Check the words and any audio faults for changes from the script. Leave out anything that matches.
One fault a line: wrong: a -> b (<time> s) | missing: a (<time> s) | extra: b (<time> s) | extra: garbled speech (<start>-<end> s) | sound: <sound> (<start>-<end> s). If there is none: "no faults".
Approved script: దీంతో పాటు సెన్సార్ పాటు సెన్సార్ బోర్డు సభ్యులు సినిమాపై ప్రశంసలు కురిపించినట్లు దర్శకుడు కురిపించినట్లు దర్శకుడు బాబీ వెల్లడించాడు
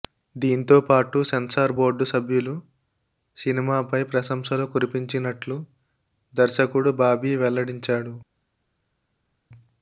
missing: పాటు సెన్సార్ (1.7 s)
missing: కురిపించినట్లు దర్శకుడు (6.9 s)